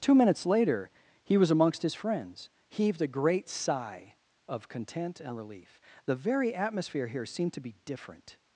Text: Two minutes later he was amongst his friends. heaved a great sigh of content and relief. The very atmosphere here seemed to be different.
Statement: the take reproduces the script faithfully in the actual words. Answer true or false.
true